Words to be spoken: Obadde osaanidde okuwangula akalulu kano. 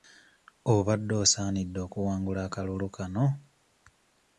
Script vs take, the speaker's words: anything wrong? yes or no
no